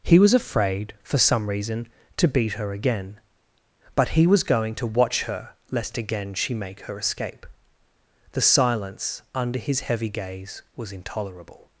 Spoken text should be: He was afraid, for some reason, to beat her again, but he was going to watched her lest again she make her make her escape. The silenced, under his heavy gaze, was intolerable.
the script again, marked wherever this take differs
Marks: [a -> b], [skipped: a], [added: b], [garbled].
He was afraid, for some reason, to beat her again, but he was going to [watched -> watch] her lest again she make her [skipped: make her] escape. The [silenced, -> silence] under his heavy gaze, was intolerable.